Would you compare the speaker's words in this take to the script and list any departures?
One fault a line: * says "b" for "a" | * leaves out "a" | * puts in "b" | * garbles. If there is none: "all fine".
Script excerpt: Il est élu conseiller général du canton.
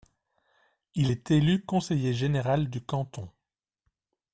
all fine